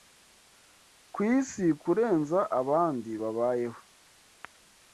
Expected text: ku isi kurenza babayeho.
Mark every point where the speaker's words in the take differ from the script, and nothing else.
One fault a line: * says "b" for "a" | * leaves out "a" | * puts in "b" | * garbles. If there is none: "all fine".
* puts in "abandi"